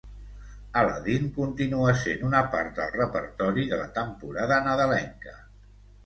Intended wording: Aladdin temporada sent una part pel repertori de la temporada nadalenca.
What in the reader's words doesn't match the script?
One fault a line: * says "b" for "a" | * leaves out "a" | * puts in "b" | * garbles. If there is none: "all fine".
* says "continua" for "temporada"
* says "del" for "pel"